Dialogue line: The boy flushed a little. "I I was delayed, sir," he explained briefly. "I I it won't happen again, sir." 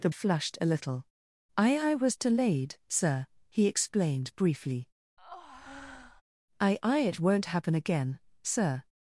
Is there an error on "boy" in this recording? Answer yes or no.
yes